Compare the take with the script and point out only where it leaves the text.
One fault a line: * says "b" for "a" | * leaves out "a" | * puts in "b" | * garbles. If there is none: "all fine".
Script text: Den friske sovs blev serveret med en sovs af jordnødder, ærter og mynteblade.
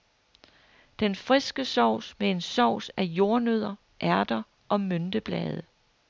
* leaves out "blev serveret"